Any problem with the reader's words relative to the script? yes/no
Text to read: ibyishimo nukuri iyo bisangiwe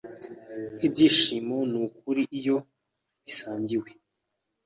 no